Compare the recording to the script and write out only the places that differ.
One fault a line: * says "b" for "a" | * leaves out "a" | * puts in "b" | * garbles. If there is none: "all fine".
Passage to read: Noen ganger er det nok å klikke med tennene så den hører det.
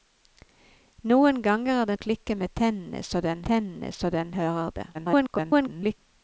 * leaves out "nok"
* puts in "tennene så den"
* garbles